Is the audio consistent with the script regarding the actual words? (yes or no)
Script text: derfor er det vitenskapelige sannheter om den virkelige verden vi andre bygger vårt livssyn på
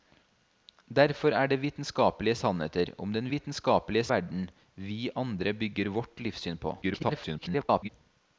no